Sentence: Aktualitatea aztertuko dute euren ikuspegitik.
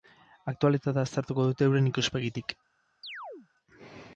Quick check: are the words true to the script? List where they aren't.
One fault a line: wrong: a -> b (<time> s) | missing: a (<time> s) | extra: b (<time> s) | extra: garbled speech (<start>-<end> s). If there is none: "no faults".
no faults